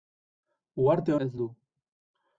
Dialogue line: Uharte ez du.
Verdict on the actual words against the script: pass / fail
pass